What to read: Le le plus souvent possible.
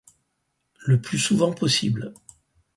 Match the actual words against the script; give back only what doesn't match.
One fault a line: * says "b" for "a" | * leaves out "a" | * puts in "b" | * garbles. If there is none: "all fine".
* leaves out "le"